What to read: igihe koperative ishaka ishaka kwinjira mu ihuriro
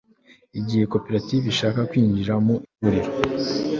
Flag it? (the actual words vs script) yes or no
yes